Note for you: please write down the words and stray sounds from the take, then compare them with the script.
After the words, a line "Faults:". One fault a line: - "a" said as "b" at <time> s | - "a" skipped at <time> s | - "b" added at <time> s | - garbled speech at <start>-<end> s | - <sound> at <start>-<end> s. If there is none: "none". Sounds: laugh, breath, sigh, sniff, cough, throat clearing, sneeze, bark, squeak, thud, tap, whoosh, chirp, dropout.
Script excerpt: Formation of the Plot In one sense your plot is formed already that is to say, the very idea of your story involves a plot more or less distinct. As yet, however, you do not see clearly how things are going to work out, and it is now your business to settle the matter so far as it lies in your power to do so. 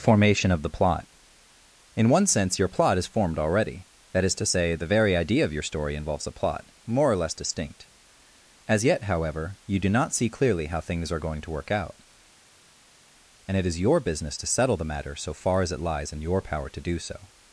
Formation of the Plot In one sense your plot is formed already that is to say, the very idea of your story involves a plot more or less distinct. As yet, however, you do not see clearly how things are going to work out, and it is your business to settle the matter so far as it lies in your power to do so.
Faults:
- "now" skipped at 13.8 s